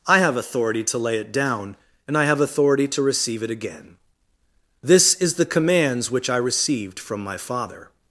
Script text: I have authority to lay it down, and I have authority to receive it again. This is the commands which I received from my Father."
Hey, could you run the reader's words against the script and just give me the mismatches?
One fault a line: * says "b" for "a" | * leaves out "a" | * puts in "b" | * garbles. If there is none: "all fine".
all fine